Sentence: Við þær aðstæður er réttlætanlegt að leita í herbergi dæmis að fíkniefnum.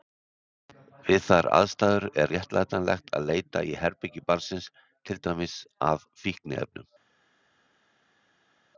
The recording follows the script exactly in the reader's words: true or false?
false